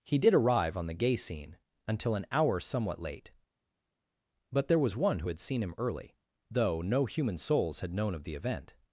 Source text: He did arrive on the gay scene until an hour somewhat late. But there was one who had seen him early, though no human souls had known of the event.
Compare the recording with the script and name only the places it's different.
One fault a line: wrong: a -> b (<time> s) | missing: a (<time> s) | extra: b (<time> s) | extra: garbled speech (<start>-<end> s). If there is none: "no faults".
no faults